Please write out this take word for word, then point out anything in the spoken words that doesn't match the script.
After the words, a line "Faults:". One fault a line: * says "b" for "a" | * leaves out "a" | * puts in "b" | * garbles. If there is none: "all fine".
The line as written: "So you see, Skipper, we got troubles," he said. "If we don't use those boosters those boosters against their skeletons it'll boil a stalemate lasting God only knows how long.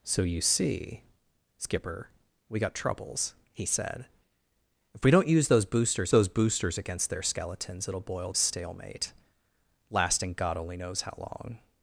"So you see, Skipper, we got troubles," he said. "If we don't use those boosters those boosters against their skeletons it'll boil a stalemate lasting God only knows how long.
Faults:
all fine